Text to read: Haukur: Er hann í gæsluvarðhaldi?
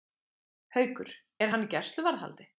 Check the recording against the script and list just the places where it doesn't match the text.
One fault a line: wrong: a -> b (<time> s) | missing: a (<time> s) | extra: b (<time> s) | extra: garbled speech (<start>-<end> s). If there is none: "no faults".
no faults